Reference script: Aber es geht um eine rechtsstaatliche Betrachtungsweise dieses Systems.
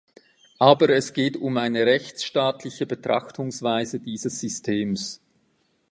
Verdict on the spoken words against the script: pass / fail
pass